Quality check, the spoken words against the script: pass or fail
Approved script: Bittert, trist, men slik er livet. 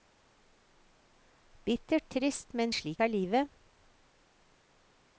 pass